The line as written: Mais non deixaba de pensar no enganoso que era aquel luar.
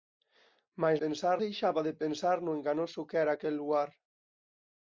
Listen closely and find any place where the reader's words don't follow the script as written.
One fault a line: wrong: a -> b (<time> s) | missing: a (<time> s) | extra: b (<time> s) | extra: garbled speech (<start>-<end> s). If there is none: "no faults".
wrong: non -> pensar (1.0 s)